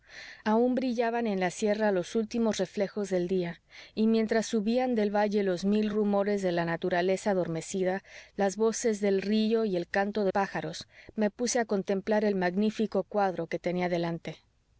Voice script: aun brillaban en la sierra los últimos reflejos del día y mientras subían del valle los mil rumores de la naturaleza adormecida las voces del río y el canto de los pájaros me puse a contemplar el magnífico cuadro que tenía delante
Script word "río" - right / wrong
right